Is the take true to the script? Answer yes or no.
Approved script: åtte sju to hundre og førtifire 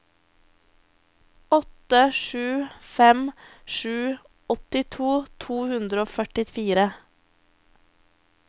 no